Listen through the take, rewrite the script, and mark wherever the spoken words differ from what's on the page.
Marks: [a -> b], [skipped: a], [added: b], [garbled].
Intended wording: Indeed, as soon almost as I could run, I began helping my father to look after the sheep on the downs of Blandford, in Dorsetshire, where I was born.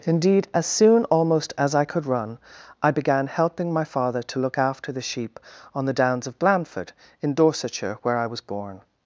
Indeed, as soon almost as I could run, I began helping my father to look after the sheep on the downs of Blandford, in Dorsetshire, where I was born.